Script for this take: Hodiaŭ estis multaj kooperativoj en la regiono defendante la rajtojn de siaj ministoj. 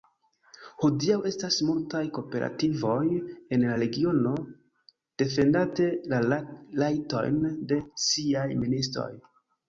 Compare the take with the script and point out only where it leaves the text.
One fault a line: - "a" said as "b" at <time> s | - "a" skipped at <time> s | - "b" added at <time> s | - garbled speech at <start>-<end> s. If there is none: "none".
- "estis" said as "estas" at 1.3 s